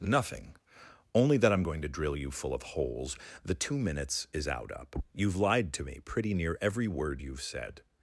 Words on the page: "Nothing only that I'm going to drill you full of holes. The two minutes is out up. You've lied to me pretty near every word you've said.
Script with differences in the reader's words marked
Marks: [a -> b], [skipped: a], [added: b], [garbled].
"Nothing only that I'm going to drill you full of holes. The two minutes is out up. You've lied to me pretty near every word you've said.